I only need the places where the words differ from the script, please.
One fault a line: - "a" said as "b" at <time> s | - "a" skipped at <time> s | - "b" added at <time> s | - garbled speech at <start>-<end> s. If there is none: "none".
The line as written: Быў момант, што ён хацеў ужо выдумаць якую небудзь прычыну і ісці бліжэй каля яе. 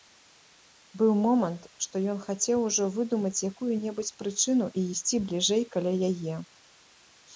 none